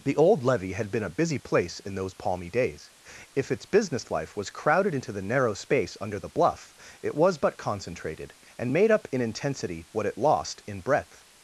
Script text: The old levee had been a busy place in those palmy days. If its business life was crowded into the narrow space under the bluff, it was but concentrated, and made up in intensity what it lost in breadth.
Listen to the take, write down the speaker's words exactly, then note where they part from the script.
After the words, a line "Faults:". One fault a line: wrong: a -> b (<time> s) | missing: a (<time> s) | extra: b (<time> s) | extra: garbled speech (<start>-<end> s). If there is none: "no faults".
The old levee had been a busy place in those palmy days. If its business life was crowded into the narrow space under the bluff, it was but concentrated, and made up in intensity what it lost in breadth.
Faults:
no faults